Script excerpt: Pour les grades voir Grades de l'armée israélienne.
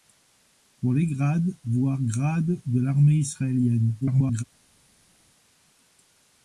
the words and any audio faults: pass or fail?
fail